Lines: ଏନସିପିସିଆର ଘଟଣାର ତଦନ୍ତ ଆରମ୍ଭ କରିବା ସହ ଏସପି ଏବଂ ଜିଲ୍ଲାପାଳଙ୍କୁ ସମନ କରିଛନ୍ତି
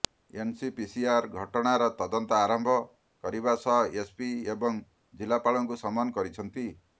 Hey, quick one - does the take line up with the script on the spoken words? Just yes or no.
yes